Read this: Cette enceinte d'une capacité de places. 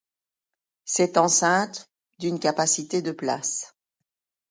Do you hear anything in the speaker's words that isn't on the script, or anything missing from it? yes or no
no